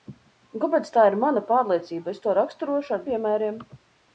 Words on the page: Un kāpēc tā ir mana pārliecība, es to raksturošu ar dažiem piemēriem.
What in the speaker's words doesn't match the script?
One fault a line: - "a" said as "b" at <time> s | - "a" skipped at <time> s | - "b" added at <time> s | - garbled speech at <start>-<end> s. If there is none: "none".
- "dažiem" skipped at 3.1 s